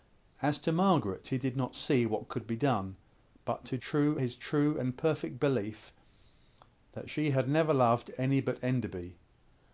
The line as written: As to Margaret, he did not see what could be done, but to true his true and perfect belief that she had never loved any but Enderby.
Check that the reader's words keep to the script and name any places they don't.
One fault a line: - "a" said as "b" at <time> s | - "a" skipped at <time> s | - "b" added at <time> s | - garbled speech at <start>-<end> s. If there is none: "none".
none